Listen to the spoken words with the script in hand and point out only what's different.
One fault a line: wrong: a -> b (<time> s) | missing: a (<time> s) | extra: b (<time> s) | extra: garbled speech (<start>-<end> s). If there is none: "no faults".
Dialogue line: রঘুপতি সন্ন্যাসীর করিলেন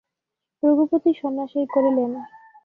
no faults